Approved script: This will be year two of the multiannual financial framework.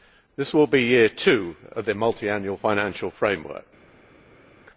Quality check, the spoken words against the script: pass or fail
pass